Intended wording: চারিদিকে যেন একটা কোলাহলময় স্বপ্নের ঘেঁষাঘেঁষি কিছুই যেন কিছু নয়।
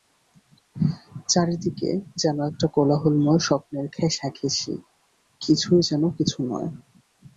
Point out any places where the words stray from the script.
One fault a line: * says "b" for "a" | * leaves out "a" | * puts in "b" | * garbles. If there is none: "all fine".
all fine